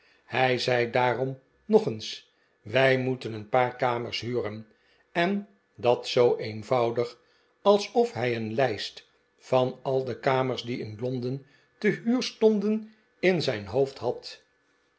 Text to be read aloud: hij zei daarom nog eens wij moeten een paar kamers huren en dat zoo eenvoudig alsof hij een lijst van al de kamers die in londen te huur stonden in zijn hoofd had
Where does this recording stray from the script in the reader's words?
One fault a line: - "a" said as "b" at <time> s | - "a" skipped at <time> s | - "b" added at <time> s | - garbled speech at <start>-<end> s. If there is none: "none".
none